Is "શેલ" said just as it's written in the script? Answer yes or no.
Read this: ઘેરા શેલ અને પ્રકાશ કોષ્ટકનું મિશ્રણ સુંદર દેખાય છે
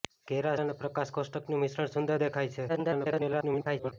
no